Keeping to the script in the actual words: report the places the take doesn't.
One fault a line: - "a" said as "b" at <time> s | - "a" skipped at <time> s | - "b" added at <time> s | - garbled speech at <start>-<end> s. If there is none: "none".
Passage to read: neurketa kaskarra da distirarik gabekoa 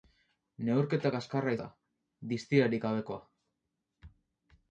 none